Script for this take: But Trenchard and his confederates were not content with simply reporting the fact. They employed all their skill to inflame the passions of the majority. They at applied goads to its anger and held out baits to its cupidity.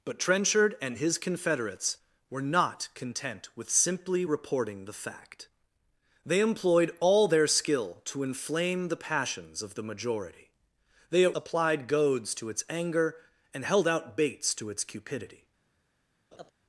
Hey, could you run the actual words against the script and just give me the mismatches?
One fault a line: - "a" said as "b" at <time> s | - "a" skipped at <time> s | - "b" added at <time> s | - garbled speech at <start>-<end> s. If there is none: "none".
none